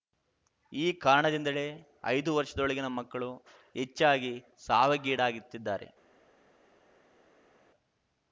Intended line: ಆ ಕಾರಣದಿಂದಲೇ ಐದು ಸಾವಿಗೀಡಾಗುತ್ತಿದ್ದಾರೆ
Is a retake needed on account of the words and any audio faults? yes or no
yes